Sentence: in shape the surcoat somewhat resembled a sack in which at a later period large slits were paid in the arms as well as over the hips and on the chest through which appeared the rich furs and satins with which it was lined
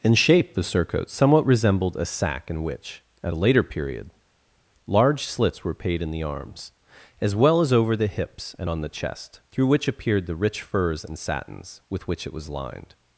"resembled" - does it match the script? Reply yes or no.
yes